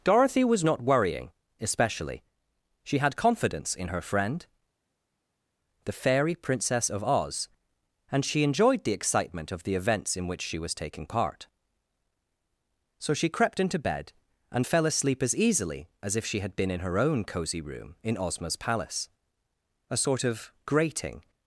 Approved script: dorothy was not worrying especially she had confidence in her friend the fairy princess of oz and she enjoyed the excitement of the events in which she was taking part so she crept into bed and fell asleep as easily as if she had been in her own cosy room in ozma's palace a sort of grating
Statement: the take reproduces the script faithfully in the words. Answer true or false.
true